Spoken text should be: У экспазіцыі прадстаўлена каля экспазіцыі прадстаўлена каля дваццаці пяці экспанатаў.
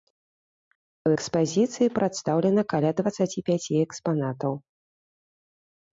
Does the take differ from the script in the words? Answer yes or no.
yes